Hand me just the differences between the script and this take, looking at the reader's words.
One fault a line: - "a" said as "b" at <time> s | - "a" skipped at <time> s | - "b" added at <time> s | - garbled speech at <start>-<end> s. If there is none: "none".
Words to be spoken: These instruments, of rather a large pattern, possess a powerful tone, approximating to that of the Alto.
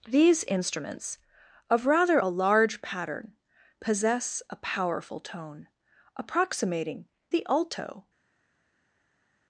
- "to that of" skipped at 7.1 s